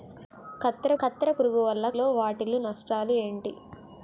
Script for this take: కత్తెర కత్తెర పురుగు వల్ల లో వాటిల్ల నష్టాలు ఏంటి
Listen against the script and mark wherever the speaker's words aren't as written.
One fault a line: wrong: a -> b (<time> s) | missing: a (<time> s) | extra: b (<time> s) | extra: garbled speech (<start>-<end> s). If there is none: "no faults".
no faults